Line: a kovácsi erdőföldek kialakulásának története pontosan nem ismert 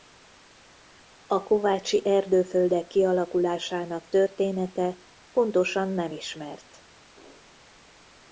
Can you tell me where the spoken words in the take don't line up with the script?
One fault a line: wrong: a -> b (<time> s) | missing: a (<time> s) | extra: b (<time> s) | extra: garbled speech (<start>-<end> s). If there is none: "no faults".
no faults